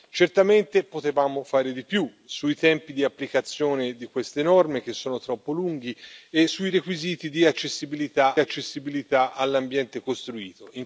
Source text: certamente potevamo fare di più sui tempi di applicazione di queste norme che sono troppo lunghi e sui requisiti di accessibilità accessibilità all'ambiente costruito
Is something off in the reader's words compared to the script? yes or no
no